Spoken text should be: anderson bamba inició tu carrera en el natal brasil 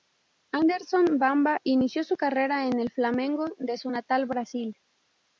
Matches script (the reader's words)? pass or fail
fail